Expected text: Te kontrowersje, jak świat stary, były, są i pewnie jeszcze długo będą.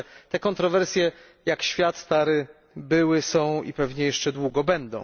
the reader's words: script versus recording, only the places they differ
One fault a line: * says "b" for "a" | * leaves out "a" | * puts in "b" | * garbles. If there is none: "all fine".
all fine